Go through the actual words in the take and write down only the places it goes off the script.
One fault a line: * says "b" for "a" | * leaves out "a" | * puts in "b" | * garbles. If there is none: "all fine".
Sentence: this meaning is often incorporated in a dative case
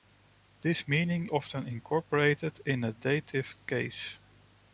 * leaves out "is"